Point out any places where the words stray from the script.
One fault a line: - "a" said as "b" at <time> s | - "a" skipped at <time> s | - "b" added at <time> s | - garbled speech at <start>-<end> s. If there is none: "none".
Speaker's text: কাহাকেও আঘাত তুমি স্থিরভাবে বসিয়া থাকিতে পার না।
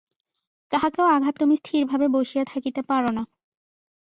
none